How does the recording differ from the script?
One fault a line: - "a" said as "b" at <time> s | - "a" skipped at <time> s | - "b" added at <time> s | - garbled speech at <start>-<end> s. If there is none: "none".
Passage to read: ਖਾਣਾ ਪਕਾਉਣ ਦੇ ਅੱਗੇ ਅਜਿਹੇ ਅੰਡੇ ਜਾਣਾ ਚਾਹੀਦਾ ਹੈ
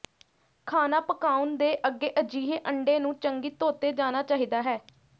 - "ਨੂੰ ਚੰਗੀ ਧੋਤੇ" added at 3.0 s